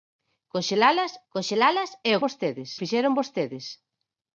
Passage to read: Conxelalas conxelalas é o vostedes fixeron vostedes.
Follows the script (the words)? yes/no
yes